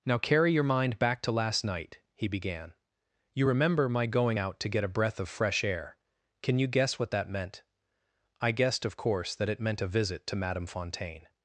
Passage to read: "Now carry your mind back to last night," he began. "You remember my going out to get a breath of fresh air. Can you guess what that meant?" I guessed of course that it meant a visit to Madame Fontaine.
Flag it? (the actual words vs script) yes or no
no